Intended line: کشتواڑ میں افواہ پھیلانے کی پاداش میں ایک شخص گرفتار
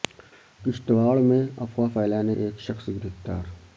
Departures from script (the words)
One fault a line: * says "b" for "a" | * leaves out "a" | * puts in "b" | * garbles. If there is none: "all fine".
* leaves out "کی پاداش میں"